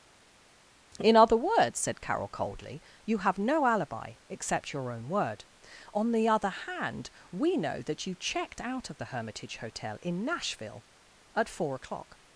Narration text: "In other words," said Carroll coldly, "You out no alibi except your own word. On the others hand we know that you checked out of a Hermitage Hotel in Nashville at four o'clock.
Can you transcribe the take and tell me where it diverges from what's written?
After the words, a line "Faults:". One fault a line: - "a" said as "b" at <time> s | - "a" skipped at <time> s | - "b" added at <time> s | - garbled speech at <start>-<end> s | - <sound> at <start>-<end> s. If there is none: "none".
"In other words," said Carroll coldly, "You have no alibi except your own word. On the other hand we know that you checked out of the Hermitage Hotel in Nashville at four o'clock.
Faults:
- "out" said as "have" at 3.2 s
- "others" said as "other" at 6.3 s
- "a" said as "the" at 9.0 s